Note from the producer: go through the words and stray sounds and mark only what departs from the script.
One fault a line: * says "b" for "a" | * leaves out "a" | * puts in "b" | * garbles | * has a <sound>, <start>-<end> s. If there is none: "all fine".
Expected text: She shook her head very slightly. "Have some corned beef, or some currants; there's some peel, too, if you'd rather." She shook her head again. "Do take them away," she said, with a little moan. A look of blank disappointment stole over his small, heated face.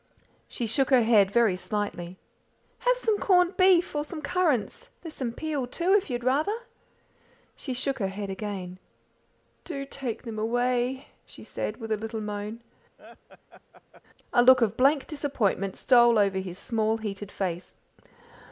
* has a laugh, 13.0-14.0 s